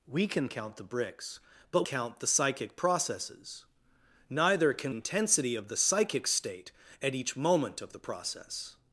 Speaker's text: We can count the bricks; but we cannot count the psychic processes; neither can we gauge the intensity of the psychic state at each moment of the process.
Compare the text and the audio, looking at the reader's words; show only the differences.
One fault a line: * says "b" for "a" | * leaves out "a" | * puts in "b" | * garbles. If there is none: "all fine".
* leaves out "we cannot"
* leaves out "we gauge the"